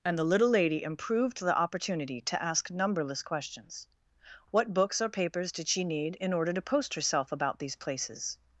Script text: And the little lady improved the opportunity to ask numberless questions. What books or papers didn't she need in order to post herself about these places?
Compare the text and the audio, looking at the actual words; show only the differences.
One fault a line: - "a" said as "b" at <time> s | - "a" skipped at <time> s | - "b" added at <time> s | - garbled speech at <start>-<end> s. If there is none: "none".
- "didn't" said as "did" at 5.5 s